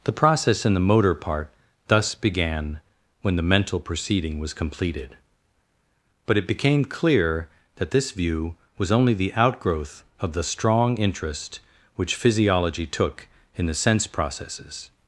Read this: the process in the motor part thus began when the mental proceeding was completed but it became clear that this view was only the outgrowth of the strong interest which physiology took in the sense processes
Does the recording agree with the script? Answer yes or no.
yes